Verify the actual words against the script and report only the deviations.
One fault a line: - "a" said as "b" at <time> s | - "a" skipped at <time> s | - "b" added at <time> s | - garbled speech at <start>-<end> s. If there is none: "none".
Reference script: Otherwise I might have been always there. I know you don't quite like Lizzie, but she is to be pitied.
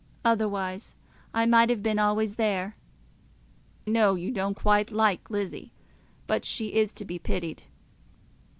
- "I" skipped at 2.8 s